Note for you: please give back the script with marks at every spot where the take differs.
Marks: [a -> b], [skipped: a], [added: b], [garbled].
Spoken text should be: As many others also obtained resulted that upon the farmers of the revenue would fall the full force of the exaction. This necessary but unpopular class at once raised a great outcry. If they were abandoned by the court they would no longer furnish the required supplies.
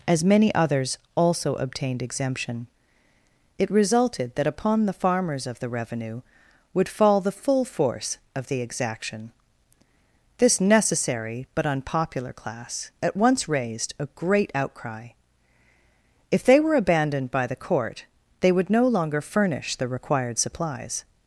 As many others also obtained [added: exemption it] resulted that upon the farmers of the revenue would fall the full force of the exaction. This necessary but unpopular class at once raised a great outcry. If they were abandoned by the court they would no longer furnish the required supplies.